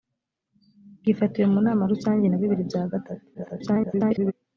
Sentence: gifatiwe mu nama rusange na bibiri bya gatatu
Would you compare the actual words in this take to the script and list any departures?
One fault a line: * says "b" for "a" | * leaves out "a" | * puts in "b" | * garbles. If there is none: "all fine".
* garbles